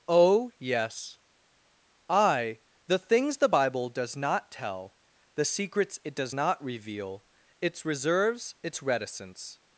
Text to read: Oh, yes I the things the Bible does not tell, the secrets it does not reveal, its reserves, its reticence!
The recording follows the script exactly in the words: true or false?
true